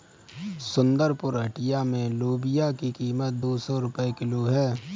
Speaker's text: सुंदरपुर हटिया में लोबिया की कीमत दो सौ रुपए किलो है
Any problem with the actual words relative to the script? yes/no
no